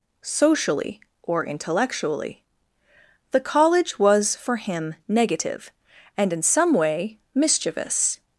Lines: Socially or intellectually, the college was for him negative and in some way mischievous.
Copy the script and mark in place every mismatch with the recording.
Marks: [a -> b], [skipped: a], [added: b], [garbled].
Socially or intellectually, the college was for him negative and in some way mischievous.